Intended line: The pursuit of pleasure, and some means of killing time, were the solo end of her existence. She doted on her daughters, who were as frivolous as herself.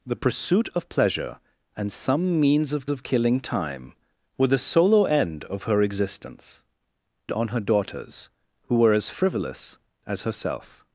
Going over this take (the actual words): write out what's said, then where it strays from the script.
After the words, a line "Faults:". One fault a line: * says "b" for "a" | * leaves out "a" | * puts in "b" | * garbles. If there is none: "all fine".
The pursuit of pleasure, and some means of of killing time, were the solo end of her existence. On her daughters, who were as frivolous as herself.
Faults:
* puts in "of"
* leaves out "She doted"